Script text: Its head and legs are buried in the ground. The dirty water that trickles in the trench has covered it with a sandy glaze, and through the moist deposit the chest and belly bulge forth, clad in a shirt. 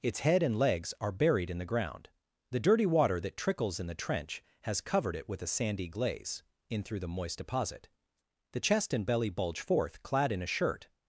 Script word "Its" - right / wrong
right